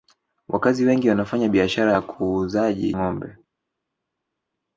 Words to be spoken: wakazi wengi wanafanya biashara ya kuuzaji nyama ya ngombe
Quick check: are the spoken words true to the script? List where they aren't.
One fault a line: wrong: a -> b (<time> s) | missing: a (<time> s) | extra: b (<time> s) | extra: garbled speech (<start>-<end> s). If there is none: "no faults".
missing: nyama ya (3.0 s)